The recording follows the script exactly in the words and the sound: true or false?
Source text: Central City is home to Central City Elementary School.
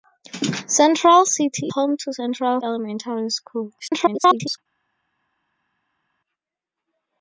false